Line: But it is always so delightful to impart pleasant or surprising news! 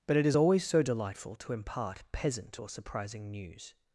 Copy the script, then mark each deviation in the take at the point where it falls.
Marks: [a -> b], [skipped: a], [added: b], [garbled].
But it is always so delightful to impart [pleasant -> peasant] or surprising news!